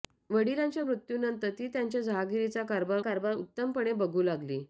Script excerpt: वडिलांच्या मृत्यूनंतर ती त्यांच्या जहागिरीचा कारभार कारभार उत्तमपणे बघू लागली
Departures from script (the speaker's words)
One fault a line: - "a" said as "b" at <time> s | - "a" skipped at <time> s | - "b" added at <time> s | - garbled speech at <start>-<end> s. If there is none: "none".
none